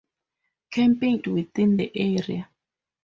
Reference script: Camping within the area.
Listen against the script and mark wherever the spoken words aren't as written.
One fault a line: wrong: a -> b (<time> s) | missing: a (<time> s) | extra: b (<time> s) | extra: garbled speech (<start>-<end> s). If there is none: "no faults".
no faults